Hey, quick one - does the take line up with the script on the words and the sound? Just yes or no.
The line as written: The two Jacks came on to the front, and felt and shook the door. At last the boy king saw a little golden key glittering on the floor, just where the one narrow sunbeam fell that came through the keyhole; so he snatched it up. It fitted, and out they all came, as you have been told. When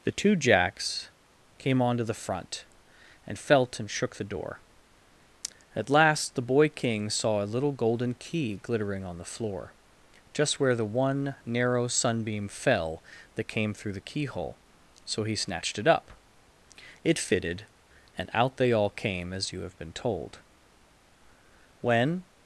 yes